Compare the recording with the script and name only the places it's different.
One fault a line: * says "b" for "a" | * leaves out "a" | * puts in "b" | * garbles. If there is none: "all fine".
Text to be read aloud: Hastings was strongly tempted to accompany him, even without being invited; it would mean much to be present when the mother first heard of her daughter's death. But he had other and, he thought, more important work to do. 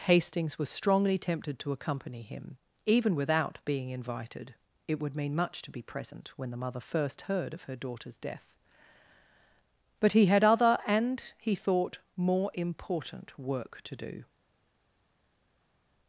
all fine